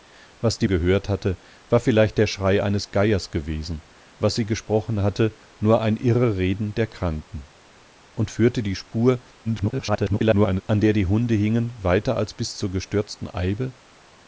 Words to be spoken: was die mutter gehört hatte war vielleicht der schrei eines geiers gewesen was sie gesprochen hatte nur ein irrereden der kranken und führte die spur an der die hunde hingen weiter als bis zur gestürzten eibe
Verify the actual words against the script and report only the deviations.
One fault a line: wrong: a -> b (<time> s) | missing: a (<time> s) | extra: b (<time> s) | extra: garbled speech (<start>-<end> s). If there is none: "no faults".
missing: mutter (0.7 s)
extra: garbled speech (9.4-10.6 s)